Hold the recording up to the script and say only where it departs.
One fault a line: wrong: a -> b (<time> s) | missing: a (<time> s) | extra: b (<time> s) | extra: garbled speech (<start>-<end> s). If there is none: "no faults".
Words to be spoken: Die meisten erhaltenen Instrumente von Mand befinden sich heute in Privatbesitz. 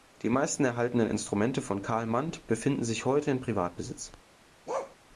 extra: Carl (1.8 s)